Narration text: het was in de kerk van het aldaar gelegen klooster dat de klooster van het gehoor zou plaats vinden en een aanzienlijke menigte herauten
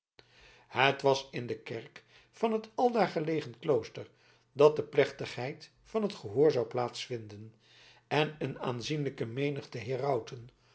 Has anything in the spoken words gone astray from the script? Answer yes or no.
yes